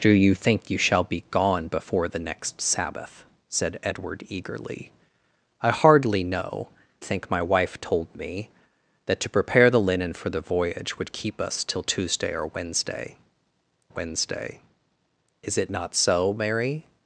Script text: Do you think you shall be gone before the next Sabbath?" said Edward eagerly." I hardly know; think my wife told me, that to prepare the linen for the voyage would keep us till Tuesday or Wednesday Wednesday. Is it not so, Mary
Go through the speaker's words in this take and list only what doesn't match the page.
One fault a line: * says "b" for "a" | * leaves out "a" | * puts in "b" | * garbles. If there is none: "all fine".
all fine